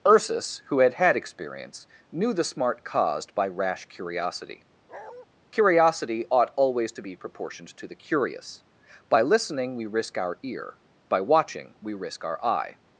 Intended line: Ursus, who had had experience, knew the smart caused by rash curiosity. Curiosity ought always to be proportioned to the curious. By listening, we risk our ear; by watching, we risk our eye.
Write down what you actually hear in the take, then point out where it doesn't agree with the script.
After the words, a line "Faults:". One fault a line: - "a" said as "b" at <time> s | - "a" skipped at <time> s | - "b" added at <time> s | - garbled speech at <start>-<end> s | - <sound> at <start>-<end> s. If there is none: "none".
Ursus, who had had experience, knew the smart caused by rash curiosity. Curiosity ought always to be proportioned to the curious. By listening, we risk our ear; by watching, we risk our eye.
Faults:
- bark at 4.9-5.3 s